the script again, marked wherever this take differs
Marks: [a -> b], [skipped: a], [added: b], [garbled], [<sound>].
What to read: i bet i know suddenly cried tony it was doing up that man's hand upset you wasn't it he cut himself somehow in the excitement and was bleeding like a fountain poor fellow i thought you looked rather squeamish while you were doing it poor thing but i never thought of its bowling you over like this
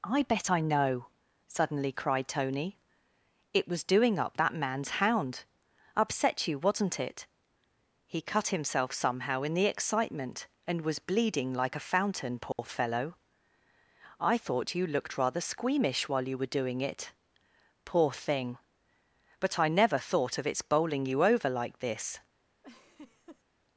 i bet i know suddenly cried tony it was doing up that man's [hand -> hound] upset you wasn't it he cut himself somehow in the excitement and was bleeding like a fountain poor [dropout] fellow i thought you looked rather squeamish while you were doing it poor thing but i never thought of its bowling you over like this [laugh]